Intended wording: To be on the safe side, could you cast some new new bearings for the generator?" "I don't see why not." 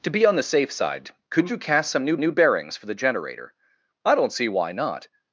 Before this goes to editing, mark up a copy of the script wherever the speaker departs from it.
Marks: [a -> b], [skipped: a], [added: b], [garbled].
To be on the safe side, could you cast some new new bearings for the generator?" "I don't see why not."